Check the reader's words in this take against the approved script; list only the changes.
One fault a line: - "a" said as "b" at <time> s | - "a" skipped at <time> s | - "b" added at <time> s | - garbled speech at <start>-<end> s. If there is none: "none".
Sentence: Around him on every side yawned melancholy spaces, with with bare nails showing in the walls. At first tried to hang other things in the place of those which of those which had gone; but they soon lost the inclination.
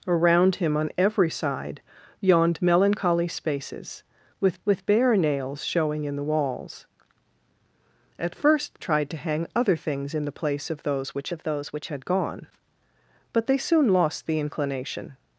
none